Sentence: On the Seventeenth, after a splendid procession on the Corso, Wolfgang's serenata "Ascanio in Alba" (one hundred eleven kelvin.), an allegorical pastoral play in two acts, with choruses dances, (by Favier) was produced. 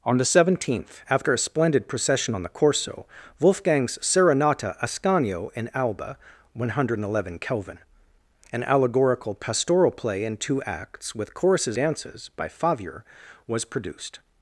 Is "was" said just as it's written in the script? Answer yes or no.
yes